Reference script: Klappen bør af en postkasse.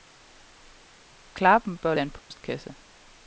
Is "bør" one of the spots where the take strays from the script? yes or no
no